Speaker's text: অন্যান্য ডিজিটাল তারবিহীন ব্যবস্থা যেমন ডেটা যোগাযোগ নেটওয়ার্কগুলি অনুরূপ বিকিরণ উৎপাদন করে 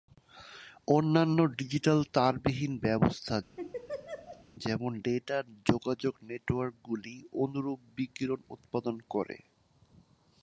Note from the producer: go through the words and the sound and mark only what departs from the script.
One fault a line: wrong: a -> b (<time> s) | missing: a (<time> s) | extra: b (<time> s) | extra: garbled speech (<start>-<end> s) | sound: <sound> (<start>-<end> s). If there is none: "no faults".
sound: laugh (3.6-4.4 s)